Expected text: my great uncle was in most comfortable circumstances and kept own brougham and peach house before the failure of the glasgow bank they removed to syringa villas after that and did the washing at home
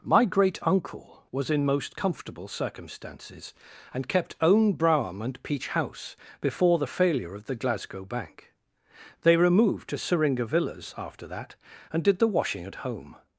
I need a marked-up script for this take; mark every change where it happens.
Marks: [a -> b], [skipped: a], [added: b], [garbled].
my great uncle was in most comfortable circumstances and kept own brougham and peach house before the failure of the glasgow bank they removed to syringa villas after that and did the washing at home